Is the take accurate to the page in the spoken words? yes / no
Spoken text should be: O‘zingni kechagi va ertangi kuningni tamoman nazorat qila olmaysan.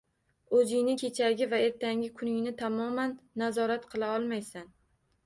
yes